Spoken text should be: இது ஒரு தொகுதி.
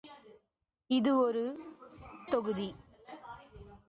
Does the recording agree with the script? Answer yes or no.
yes